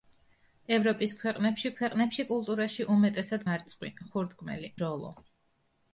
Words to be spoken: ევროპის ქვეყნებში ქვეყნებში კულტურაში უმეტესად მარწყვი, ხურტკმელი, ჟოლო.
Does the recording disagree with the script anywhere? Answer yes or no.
no